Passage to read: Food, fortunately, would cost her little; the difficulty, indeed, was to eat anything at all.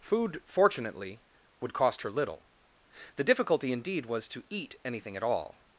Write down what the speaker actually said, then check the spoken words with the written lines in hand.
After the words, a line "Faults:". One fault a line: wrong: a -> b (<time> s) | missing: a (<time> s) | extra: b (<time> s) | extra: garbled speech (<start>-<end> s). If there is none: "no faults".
Food, fortunately, would cost her little; the difficulty, indeed, was to eat anything at all.
Faults:
no faults